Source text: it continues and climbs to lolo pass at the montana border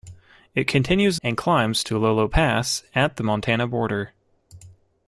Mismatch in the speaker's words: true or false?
false